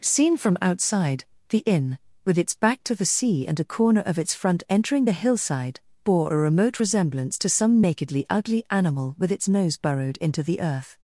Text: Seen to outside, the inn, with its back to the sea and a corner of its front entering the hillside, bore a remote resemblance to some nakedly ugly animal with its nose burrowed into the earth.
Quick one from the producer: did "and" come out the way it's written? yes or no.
yes